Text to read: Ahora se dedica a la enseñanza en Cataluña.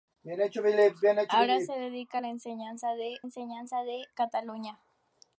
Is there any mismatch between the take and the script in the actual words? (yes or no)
yes